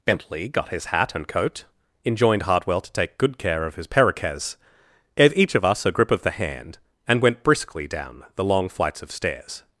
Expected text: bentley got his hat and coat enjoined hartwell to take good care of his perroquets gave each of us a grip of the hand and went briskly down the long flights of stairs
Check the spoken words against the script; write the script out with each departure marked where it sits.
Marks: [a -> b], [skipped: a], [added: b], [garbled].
bentley got his hat and coat enjoined hartwell to take good care of his perroquets gave each of us a grip of the hand and went briskly down the long flights of stairs